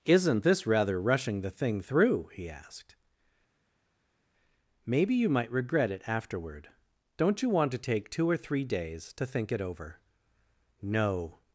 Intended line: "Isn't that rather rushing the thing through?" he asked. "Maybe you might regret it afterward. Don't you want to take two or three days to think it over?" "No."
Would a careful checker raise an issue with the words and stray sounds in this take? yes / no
yes